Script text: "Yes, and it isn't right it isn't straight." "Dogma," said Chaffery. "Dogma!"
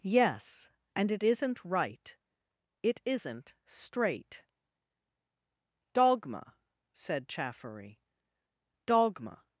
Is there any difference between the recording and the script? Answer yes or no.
no